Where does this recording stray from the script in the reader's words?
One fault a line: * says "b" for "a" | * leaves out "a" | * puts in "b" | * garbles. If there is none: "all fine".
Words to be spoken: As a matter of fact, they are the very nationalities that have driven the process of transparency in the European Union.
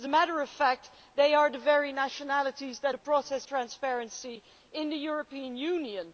* leaves out "have driven"
* leaves out "of"